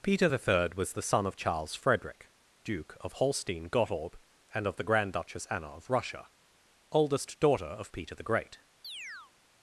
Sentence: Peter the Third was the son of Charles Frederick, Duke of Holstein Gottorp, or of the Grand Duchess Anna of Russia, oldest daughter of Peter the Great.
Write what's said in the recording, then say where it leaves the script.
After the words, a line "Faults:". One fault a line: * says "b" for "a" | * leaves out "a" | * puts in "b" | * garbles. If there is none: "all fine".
Peter the Third was the son of Charles Frederick, Duke of Holstein Gottorp, and of the Grand Duchess Anna of Russia, oldest daughter of Peter the Great.
Faults:
* says "and" for "or"